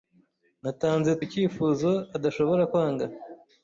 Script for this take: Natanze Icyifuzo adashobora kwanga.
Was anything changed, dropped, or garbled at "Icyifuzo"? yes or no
no